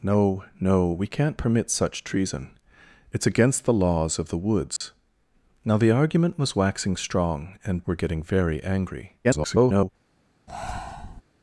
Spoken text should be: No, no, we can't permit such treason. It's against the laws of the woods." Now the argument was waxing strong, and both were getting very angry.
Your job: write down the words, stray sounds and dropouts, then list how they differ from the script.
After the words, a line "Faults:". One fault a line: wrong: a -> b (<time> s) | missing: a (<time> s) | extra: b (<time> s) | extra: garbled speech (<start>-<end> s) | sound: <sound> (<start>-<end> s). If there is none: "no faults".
No, no, we can't permit such treason. It's against the laws of the woods." Now the argument was waxing strong, and were getting very angry. [garbled]
Faults:
sound: dropout (4.8-4.8 s)
missing: both (7.8 s)
extra: garbled speech (9.2-9.9 s)
sound: breath (10.5-11.2 s)